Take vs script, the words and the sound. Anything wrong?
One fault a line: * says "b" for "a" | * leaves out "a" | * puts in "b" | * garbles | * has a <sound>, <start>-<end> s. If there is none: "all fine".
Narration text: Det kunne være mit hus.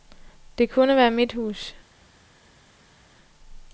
all fine